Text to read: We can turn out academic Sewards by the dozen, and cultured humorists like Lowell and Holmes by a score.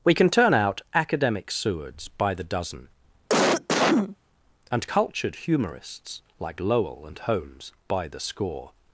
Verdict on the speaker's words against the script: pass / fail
fail